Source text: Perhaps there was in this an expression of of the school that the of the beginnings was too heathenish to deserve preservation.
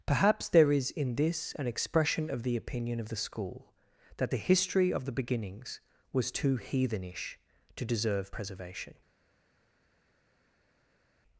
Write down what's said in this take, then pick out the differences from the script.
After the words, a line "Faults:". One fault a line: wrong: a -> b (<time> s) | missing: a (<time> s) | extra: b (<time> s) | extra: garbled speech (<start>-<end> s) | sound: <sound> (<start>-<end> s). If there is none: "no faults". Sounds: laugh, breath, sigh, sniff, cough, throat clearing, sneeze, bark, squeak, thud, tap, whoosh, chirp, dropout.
Perhaps there is in this an expression of the opinion of the school that the history of the beginnings was too heathenish to deserve preservation.
Faults:
wrong: was -> is (0.7 s)
extra: the opinion (2.4 s)
extra: history (4.4 s)